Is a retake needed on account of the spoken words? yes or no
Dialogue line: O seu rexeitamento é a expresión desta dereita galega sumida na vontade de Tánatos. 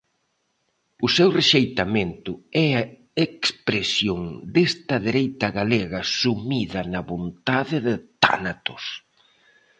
no